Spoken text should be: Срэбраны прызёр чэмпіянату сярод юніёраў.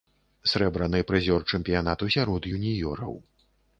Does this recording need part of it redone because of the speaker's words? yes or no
no